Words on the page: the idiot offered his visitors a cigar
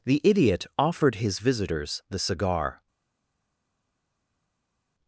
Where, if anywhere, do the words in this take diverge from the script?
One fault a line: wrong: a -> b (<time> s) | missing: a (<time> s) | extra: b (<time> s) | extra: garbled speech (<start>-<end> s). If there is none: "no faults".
wrong: a -> the (2.1 s)